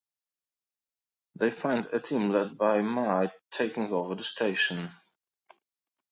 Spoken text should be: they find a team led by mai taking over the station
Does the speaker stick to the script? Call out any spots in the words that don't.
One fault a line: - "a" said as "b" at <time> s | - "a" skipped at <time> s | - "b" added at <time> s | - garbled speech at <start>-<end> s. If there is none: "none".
none